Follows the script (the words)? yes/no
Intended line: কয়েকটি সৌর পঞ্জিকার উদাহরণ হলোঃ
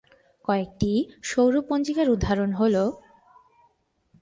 yes